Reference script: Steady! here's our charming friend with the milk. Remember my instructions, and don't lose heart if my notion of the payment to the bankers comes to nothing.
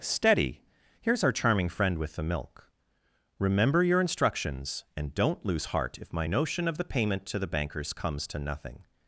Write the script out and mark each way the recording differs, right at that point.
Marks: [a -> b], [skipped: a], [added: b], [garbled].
Steady! here's our charming friend with the milk. Remember [my -> your] instructions, and don't lose heart if my notion of the payment to the bankers comes to nothing.